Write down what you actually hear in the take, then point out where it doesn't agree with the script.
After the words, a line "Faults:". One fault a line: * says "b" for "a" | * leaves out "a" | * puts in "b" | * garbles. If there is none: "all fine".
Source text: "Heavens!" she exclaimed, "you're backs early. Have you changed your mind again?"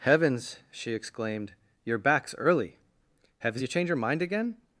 "Heavens!" she exclaimed, "you're backs early. Have you changed your mind again?"
Faults:
all fine